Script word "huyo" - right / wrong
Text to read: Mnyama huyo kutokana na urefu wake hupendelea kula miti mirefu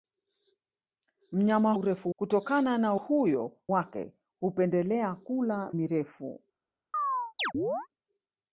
wrong